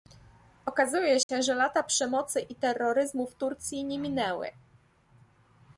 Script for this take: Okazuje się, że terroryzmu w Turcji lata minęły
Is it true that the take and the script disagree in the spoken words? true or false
true